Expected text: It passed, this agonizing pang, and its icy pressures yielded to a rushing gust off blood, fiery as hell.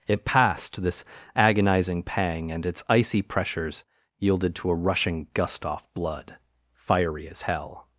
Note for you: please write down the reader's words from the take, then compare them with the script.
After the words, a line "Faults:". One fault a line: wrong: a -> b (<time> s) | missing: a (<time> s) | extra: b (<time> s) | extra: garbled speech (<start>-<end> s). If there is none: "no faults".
It passed, this agonizing pang, and its icy pressures yielded to a rushing gust off blood, fiery as hell.
Faults:
no faults